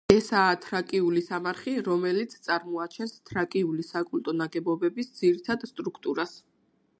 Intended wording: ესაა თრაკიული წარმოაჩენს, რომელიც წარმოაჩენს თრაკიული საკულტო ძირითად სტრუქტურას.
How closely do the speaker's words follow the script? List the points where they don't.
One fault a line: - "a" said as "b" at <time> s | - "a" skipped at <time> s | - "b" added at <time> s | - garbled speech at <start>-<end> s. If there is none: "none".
- "წარმოაჩენს" said as "სამარხი" at 1.2 s
- "ნაგებობების" added at 4.4 s